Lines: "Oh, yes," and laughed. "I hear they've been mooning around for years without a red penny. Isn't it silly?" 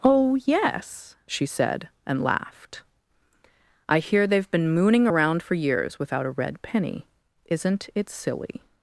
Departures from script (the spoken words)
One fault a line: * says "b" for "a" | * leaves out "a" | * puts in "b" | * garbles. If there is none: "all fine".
* puts in "she said"